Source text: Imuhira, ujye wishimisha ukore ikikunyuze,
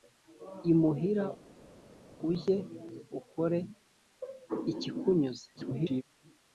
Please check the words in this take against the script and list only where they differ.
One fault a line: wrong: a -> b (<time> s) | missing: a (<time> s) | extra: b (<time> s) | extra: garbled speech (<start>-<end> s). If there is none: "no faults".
missing: wishimisha (2.6 s)
extra: garbled speech (5.6-6.0 s)